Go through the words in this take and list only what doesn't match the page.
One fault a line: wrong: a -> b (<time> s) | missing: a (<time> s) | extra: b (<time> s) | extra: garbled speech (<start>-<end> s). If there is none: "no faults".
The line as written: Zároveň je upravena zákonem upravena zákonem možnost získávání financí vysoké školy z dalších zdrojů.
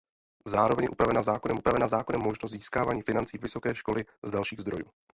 no faults